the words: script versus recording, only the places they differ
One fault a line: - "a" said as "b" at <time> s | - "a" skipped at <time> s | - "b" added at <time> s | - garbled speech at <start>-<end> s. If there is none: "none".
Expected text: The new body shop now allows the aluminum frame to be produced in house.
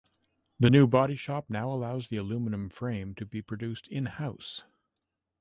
none